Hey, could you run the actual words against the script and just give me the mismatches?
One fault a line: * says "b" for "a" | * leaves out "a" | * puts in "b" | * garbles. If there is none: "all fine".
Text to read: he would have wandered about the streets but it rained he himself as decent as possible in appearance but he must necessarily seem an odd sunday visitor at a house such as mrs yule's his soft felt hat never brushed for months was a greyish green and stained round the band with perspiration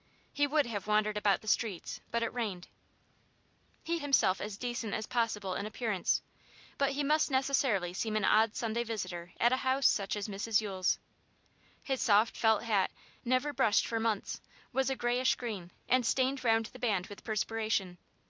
all fine